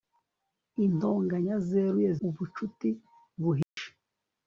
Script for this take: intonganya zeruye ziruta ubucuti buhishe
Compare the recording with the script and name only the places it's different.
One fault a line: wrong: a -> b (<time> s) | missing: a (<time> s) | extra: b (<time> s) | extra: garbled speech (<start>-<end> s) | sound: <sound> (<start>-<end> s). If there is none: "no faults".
missing: ziruta (2.1 s)
sound: dropout (3.6-3.8 s)